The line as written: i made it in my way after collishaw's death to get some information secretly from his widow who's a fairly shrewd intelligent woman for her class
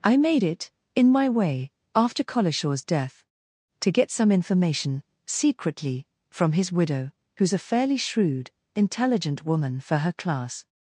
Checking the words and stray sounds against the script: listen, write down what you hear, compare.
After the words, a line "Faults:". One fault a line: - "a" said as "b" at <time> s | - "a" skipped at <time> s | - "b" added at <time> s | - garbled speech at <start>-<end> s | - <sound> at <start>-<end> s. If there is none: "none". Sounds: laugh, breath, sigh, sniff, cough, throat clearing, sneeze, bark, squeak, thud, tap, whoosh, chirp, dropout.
i made it in my way after collishaw's death to get some information secretly from his widow who's a fairly shrewd intelligent woman for her class
Faults:
none